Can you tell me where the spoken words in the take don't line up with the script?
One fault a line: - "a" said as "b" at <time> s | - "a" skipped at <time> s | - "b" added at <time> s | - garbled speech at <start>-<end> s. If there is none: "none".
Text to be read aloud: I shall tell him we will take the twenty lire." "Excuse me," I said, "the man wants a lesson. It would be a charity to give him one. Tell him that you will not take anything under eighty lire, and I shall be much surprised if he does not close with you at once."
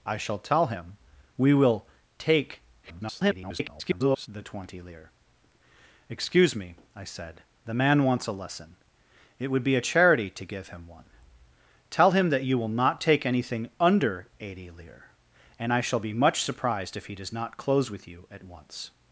- garbled speech at 2.8-4.3 s